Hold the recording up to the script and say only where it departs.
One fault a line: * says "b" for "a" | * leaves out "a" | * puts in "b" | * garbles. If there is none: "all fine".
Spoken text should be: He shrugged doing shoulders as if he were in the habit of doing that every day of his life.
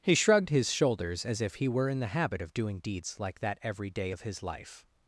* says "his" for "doing"
* puts in "deeds like"